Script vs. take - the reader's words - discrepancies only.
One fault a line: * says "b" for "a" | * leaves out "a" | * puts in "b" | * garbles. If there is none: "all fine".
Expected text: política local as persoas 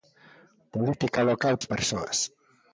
all fine